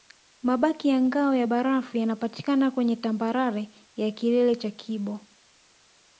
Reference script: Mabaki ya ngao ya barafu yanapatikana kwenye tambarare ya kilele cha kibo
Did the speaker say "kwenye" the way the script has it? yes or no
yes